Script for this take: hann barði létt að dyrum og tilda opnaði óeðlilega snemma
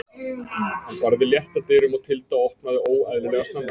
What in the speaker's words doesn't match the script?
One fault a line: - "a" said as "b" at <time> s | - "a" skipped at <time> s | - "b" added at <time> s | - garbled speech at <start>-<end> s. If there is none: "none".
none